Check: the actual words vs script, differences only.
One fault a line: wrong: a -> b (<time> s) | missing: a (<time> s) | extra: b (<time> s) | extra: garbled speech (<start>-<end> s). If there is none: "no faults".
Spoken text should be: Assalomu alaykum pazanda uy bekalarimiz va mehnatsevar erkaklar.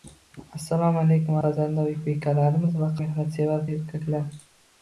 no faults